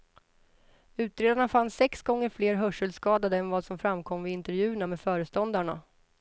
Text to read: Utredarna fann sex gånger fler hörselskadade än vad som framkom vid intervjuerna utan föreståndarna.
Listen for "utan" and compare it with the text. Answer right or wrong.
wrong